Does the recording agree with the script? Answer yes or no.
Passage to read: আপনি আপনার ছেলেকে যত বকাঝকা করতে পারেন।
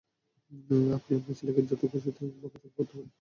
no